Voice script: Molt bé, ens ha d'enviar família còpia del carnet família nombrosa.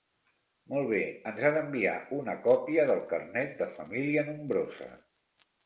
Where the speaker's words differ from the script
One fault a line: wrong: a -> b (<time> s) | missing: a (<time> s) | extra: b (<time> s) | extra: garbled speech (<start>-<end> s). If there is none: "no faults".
wrong: família -> una (2.2 s)
extra: de (3.6 s)